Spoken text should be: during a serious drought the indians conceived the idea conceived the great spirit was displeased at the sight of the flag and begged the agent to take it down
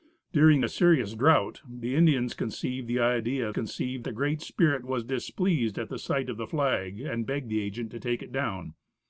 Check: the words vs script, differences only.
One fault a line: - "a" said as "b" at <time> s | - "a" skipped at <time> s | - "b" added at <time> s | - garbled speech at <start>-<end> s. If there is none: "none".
none